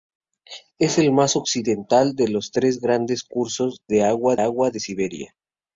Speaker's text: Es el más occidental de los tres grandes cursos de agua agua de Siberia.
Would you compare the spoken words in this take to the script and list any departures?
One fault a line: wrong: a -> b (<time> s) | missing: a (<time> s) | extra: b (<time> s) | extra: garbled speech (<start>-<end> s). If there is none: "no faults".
no faults